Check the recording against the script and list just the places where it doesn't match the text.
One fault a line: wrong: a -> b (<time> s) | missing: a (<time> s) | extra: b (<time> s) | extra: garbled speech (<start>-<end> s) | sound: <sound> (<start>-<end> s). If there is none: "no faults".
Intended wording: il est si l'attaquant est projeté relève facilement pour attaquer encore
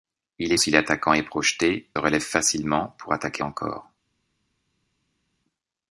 no faults